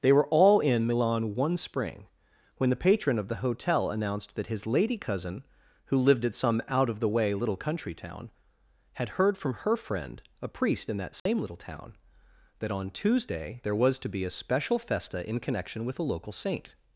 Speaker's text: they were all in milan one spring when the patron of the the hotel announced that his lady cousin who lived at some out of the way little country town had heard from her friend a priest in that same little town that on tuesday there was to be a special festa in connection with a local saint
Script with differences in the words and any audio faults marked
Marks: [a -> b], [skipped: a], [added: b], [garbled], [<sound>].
they were all in milan one spring when the patron of the [skipped: the] hotel announced that his lady cousin who lived at some out of the way little country town had heard from her friend a priest in that same [dropout] little town that on tuesday there was to be a special festa in connection with a local saint